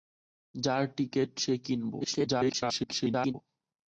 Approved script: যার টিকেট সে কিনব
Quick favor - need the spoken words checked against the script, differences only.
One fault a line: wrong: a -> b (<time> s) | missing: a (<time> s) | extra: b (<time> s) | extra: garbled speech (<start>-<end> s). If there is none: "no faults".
extra: garbled speech (2.0-3.3 s)